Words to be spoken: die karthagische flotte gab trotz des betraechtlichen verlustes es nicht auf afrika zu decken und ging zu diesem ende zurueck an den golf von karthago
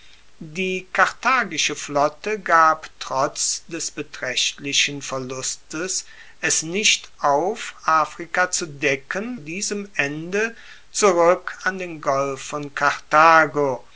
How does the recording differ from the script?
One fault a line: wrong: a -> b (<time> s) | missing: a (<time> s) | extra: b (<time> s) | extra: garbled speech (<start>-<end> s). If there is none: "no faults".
missing: und ging zu (9.4 s)